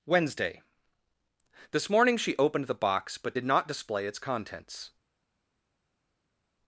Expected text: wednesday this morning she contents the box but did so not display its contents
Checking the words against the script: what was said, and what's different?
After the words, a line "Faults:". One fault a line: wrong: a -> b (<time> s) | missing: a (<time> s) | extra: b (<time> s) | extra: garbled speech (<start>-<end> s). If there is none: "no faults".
wednesday this morning she opened the box but did not display its contents
Faults:
wrong: contents -> opened (2.4 s)
missing: so (3.4 s)